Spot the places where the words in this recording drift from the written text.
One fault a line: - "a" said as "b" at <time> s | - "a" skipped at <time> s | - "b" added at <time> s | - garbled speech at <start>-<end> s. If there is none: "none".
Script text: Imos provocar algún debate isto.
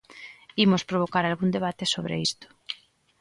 - "sobre" added at 1.9 s